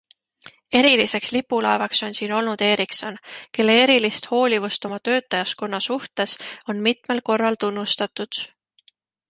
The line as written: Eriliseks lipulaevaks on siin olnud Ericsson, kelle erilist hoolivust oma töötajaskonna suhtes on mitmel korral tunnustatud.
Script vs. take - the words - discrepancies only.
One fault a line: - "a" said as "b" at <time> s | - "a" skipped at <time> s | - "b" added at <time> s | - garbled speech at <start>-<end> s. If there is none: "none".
none